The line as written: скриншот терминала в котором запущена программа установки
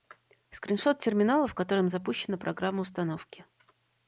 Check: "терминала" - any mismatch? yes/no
no